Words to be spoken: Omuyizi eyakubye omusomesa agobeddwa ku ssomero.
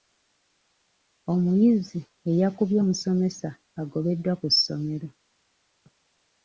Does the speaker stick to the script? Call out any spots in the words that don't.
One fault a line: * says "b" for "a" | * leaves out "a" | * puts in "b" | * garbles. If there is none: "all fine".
all fine